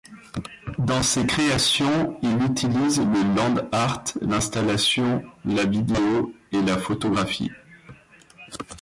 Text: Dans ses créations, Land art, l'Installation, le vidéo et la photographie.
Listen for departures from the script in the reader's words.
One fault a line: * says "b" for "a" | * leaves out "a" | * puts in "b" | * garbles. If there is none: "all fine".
* puts in "il utilise le"
* says "la" for "le"